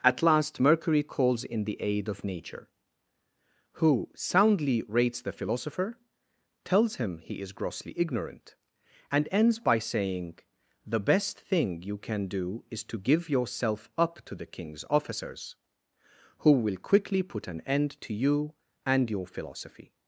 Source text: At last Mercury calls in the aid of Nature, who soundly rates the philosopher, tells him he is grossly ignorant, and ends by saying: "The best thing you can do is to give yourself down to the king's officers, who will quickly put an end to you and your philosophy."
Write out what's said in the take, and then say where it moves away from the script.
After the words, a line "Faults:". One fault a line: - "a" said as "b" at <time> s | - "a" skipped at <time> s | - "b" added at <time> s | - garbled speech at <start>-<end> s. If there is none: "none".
At last Mercury calls in the aid of Nature, who soundly rates the philosopher, tells him he is grossly ignorant, and ends by saying: "The best thing you can do is to give yourself up to the king's officers, who will quickly put an end to you and your philosophy."
Faults:
- "down" said as "up" at 14.0 s